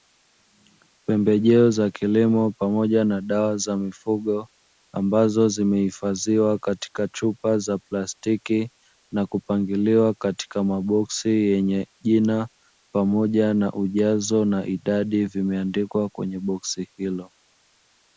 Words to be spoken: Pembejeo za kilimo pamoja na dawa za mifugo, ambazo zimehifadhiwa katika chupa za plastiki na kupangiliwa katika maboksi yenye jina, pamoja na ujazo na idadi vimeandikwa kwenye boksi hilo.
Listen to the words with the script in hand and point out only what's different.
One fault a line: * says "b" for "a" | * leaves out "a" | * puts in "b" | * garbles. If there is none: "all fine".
all fine